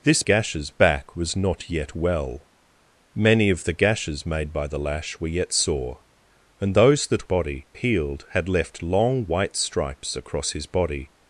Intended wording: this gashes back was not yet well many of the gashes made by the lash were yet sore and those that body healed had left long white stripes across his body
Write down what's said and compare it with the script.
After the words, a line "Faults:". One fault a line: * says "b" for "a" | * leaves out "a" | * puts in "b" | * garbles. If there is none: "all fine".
this gashes back was not yet well many of the gashes made by the lash were yet sore and those that body healed had left long white stripes across his body
Faults:
all fine